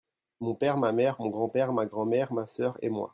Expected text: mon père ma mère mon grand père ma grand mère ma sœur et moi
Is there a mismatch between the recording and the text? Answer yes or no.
no